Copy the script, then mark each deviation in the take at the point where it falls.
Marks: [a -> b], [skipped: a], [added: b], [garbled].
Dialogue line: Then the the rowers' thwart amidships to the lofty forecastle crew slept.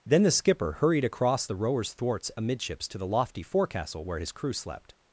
Then the [added: skipper hurried across] the rowers' [thwart -> thwarts] amidships to the lofty forecastle [added: where his] crew slept.